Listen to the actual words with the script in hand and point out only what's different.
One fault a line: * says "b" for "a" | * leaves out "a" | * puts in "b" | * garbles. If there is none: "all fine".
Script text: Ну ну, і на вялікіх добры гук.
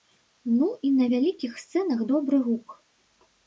* leaves out "ну"
* puts in "сцэнах"